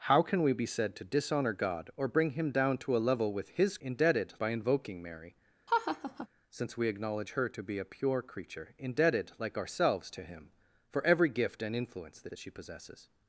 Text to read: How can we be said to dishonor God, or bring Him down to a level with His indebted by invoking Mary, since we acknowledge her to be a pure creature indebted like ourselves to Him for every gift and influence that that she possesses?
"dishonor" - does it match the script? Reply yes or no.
yes